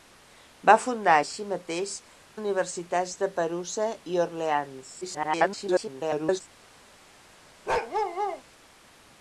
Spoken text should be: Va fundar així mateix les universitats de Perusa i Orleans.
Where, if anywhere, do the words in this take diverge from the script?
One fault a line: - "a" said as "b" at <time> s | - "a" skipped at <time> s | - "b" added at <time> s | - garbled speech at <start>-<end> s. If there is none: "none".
- "les" skipped at 1.9 s
- garbled speech at 5.0-6.4 s